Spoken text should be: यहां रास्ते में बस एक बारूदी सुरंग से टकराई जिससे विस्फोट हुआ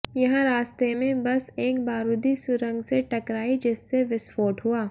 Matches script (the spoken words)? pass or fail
pass